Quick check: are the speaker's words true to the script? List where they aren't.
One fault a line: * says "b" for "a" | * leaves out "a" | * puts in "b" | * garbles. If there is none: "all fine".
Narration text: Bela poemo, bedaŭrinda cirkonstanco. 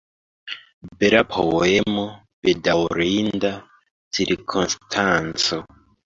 all fine